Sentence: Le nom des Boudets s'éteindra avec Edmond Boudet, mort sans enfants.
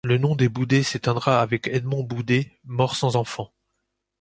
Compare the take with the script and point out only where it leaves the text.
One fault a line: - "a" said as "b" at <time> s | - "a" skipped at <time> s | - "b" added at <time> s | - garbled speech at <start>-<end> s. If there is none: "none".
none